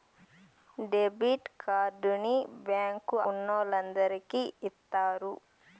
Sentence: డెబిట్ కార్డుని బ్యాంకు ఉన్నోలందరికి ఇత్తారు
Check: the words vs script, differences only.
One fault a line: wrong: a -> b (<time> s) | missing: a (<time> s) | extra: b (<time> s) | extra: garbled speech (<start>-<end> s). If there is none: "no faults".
no faults